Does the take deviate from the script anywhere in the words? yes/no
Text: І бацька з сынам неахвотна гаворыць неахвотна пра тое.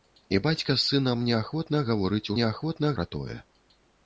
no